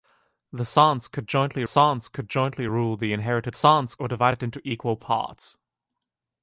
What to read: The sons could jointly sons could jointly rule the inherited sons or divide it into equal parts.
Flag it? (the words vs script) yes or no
no